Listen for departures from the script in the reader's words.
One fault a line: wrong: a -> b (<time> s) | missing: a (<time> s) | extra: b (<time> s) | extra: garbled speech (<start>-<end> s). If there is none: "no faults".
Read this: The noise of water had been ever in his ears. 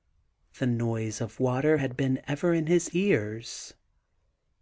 no faults